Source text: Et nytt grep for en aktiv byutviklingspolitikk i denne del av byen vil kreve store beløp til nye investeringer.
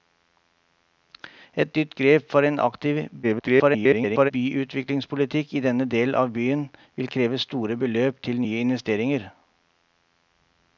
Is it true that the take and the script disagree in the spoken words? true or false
true